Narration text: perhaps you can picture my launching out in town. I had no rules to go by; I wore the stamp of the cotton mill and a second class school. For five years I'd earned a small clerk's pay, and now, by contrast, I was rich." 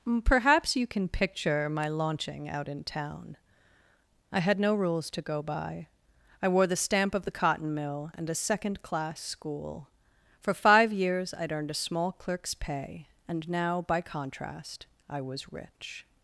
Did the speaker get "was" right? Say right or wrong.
right